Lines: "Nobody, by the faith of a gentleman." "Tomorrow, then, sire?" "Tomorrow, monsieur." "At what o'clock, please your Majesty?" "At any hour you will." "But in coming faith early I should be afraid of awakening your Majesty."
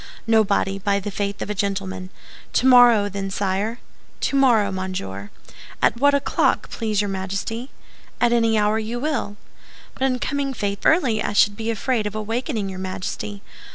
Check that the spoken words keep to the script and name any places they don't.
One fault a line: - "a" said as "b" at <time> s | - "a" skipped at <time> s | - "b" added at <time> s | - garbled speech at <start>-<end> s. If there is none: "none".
none